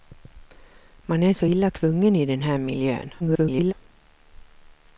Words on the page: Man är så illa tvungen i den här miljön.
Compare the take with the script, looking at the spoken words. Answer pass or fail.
fail